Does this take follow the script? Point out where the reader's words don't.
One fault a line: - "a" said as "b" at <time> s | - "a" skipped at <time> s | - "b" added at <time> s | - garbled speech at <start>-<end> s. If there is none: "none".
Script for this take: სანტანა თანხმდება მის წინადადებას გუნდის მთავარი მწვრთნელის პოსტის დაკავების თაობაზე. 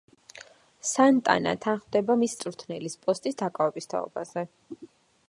- "წინადადებას გუნდის მთავარი" skipped at 2.3 s